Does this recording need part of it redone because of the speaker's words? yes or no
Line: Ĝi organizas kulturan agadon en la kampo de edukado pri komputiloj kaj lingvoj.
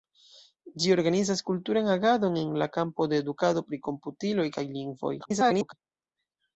yes